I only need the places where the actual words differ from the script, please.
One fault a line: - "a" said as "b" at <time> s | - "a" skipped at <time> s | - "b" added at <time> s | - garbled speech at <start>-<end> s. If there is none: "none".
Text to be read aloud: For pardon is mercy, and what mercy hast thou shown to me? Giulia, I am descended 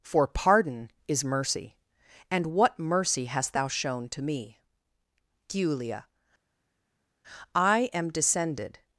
none